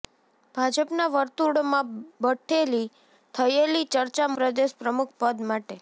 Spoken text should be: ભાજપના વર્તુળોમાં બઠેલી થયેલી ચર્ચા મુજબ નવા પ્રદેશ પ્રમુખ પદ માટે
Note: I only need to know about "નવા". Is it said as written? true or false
false